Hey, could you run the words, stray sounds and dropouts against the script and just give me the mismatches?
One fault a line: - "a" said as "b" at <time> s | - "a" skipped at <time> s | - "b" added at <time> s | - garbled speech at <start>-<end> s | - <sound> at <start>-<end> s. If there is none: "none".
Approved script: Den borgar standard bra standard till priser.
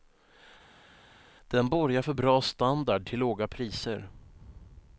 - "standard" said as "för" at 2.0 s
- "låga" added at 3.2 s